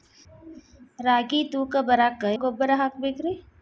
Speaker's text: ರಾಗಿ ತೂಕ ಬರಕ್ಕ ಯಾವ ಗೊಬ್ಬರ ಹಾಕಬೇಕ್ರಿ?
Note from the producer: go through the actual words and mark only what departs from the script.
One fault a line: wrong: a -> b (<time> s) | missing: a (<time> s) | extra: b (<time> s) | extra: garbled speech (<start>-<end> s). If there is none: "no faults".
missing: ಯಾವ (2.2 s)